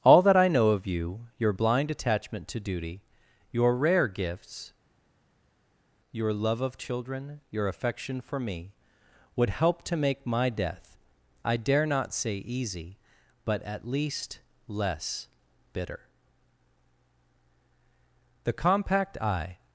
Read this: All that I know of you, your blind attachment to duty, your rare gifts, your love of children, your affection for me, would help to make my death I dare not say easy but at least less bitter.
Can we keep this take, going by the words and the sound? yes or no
no